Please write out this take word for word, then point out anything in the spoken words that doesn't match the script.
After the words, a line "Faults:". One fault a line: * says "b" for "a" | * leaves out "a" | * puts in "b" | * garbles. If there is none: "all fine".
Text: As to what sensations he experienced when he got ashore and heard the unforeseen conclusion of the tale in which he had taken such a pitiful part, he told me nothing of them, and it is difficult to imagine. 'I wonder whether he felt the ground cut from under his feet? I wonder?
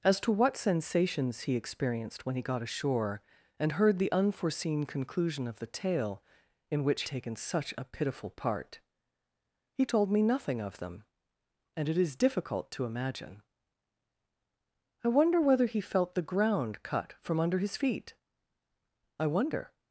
As to what sensations he experienced when he got ashore and heard the unforeseen conclusion of the tale in which taken such a pitiful part, he told me nothing of them, and it is difficult to imagine. 'I wonder whether he felt the ground cut from under his feet? I wonder?
Faults:
* leaves out "he had"